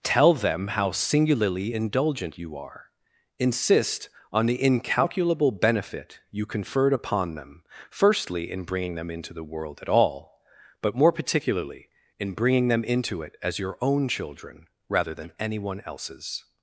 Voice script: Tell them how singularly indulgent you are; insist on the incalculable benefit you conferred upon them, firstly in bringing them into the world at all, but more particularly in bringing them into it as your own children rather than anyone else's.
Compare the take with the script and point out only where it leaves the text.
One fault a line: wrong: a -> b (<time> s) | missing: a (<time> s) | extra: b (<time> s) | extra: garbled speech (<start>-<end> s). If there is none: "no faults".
no faults